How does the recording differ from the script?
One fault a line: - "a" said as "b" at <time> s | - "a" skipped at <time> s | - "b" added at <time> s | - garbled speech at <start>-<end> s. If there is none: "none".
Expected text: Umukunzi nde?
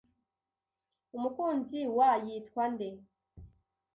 - "wa yitwa" added at 2.0 s